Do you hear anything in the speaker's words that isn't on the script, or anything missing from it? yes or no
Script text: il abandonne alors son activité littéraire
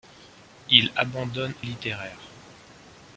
yes